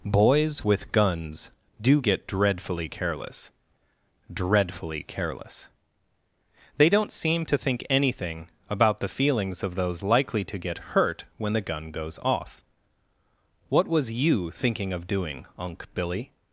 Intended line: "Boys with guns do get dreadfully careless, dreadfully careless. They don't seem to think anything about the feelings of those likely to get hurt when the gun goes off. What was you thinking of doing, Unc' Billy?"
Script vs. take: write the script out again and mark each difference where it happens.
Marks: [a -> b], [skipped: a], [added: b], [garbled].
"Boys with guns do get dreadfully careless, dreadfully careless. They don't seem to think anything about the feelings of those likely to get hurt when the gun goes off. What was you thinking of doing, Unc' Billy?"